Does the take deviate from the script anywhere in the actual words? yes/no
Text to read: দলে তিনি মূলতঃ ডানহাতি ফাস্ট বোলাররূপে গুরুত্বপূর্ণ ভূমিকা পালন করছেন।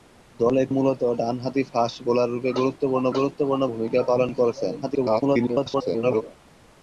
yes